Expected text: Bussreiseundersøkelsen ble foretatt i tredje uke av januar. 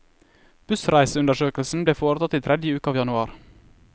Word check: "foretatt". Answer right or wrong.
right